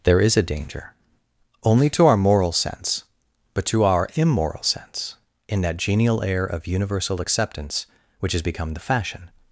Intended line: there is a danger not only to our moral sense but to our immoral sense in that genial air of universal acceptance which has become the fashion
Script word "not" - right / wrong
wrong